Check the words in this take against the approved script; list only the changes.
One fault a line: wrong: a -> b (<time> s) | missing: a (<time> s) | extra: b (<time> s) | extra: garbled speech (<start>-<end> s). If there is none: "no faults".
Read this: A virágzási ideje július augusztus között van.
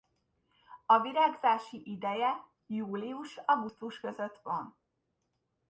no faults